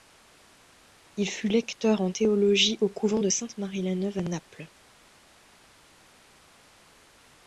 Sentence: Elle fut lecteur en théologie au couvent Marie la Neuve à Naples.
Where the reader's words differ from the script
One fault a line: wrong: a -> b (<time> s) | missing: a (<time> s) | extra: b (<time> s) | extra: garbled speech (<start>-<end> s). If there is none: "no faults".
wrong: Elle -> Il (1.1 s)
extra: de Sainte (3.2 s)